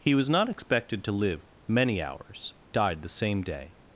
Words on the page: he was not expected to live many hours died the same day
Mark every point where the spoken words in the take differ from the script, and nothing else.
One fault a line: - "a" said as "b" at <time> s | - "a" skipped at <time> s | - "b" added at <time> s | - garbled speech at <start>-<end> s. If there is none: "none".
none